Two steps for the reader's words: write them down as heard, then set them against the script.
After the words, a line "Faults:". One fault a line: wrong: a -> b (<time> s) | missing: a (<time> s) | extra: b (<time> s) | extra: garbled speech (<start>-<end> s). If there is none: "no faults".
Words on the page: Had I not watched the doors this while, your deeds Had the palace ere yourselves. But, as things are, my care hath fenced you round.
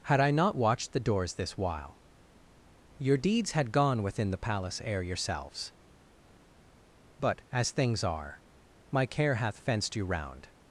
Had I not watched the doors this while, your deeds Had gone within the palace ere yourselves. But, as things are, my care hath fenced you round.
Faults:
extra: gone within (3.7 s)